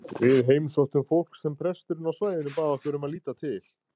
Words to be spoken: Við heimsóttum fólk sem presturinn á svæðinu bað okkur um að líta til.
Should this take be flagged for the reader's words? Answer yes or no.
no